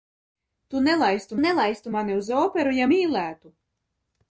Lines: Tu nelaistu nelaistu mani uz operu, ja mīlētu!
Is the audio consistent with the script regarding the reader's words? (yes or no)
yes